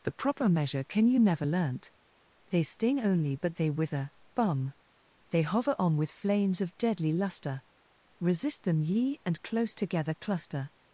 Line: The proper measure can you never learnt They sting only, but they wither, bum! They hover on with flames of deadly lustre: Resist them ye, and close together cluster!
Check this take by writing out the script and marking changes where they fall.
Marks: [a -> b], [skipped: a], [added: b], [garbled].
The proper measure can you never learnt They sting only, but they wither, bum! They hover on with flames of deadly lustre: Resist them ye, and close together cluster!